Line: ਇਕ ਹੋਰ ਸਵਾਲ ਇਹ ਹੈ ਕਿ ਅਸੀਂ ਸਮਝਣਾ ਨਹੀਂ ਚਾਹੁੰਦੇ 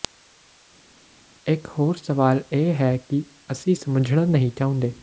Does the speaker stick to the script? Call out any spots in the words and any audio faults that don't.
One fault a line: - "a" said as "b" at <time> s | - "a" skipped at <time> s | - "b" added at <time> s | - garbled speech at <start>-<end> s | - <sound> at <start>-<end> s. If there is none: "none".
none